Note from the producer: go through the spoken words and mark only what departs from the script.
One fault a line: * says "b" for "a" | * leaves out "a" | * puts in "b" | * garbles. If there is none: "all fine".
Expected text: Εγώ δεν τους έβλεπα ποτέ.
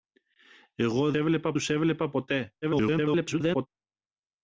* says "έβλεπα" for "δεν"
* garbles